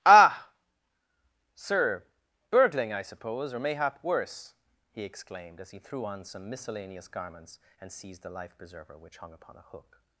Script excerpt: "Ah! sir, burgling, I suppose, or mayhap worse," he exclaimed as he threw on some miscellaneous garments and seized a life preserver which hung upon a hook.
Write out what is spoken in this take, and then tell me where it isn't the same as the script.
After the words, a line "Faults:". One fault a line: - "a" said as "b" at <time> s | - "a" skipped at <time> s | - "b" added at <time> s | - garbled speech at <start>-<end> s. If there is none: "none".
"Ah! sir, burgling, I suppose, or mayhap worse," he exclaimed as he threw on some miscellaneous garments and seized the life preserver which hung upon a hook.
Faults:
- "a" said as "the" at 8.2 s